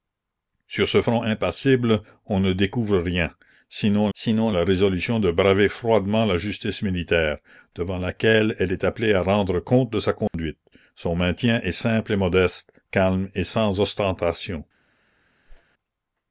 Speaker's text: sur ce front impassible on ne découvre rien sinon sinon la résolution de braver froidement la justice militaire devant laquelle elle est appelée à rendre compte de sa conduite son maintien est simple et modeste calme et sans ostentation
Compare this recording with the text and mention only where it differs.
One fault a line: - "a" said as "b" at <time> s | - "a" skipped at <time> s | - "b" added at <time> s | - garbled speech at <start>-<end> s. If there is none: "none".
none